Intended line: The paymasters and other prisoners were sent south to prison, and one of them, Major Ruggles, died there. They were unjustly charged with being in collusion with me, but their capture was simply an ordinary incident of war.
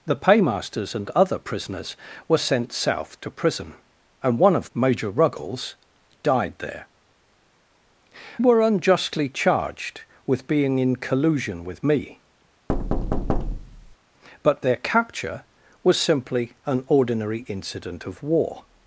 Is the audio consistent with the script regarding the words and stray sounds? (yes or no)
no